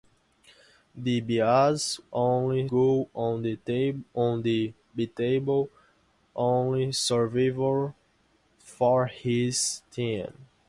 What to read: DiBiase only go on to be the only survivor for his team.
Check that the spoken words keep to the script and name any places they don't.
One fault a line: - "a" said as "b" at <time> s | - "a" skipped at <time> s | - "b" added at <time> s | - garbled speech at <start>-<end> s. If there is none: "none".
none